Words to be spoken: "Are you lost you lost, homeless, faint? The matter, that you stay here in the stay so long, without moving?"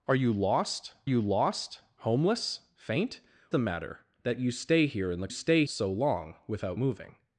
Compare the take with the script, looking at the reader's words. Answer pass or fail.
pass